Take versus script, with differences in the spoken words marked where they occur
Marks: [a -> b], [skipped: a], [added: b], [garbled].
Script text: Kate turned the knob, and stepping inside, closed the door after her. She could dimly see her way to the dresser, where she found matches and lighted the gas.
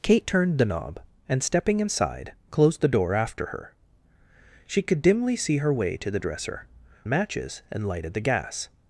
Kate turned the knob, and stepping inside, closed the door after her. She could dimly see her way to the dresser, [skipped: where she found] matches and lighted the gas.